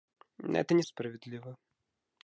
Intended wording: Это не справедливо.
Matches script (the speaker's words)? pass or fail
pass